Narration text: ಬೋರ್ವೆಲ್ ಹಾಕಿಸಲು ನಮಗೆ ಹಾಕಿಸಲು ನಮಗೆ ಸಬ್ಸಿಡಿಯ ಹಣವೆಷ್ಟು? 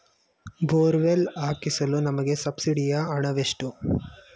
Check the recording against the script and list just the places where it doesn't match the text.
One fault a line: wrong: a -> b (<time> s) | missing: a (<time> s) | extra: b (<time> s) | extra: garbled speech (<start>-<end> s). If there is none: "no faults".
missing: ಹಾಕಿಸಲು ನಮಗೆ (2.4 s)